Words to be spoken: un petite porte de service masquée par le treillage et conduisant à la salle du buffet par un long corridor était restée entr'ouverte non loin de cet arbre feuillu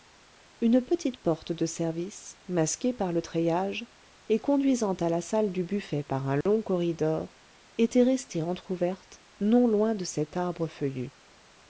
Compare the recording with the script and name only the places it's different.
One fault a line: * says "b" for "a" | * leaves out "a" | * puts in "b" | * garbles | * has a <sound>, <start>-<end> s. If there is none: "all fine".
* says "une" for "un"
* has a dropout, 6.4-6.5 s